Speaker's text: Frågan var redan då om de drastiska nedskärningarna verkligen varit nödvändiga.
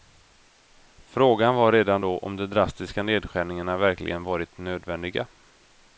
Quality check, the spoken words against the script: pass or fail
pass